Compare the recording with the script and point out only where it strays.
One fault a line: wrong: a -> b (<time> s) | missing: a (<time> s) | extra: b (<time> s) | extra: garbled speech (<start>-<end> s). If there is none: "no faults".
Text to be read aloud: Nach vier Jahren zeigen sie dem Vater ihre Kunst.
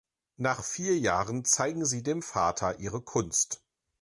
no faults